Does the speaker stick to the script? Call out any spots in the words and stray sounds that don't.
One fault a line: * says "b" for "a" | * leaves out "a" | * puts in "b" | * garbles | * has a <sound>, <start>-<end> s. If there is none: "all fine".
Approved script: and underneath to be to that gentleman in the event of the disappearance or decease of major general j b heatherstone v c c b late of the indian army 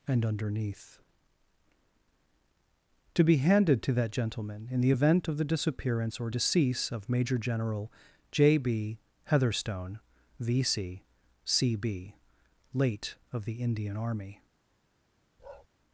* puts in "handed"
* has a bark, 15.4-15.7 s